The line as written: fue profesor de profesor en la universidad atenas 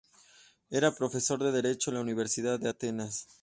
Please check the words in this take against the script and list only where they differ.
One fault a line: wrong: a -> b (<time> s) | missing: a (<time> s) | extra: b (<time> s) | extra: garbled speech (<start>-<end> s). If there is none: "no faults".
wrong: fue -> era (0.7 s)
wrong: profesor -> derecho (1.5 s)
extra: de (2.6 s)